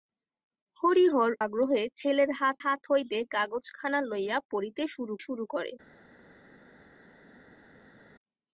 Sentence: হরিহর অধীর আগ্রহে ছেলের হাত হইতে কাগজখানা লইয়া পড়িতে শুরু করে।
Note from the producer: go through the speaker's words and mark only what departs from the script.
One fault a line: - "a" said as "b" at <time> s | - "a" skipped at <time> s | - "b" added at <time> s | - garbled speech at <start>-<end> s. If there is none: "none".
- "অধীর" skipped at 1.3 s
- "হাত" added at 2.6 s
- "শুরু" added at 5.2 s